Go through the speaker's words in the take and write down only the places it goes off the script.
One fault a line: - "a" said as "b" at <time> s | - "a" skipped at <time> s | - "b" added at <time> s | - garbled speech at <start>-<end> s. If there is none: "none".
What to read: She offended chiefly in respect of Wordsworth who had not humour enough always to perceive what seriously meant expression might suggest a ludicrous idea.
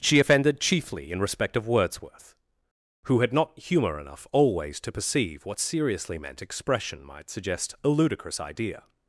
none